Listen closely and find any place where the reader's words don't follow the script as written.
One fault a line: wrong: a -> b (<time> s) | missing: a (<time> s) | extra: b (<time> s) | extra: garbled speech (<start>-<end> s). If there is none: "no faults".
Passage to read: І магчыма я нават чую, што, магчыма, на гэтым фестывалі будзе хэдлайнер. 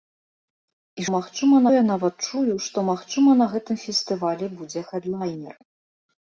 no faults